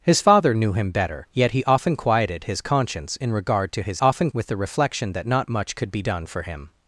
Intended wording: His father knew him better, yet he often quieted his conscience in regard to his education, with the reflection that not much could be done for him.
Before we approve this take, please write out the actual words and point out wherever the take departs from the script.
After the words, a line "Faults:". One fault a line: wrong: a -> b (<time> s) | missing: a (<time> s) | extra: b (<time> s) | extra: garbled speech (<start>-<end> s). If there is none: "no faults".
His father knew him better, yet he often quieted his conscience in regard to his often, with the reflection that not much could be done for him.
Faults:
wrong: education -> often (4.0 s)